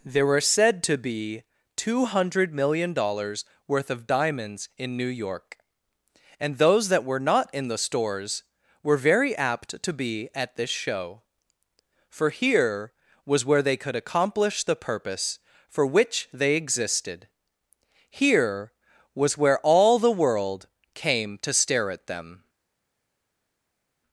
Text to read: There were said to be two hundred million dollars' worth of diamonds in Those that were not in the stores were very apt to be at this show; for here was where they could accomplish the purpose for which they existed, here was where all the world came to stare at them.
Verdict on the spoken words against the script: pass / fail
fail